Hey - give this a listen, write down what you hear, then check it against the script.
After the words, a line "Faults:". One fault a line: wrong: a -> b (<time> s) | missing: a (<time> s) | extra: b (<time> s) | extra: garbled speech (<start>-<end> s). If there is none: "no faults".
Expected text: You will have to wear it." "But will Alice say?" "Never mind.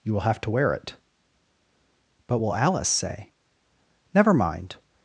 You will have to wear it." "But will Alice say?" "Never mind.
Faults:
no faults